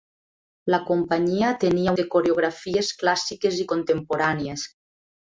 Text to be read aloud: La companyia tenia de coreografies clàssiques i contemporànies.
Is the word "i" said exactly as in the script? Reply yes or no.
yes